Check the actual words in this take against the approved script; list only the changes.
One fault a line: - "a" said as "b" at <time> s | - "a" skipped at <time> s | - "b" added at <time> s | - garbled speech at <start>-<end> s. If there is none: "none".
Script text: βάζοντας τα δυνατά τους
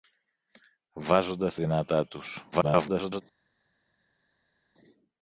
- "τα" skipped at 1.6 s
- garbled speech at 2.5-3.2 s